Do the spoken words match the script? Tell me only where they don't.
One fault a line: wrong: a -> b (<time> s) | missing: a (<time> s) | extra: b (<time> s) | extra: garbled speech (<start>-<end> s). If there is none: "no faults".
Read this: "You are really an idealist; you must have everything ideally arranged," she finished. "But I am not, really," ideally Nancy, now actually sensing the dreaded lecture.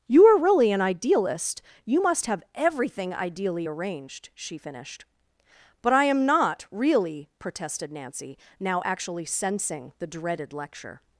wrong: ideally -> protested (7.4 s)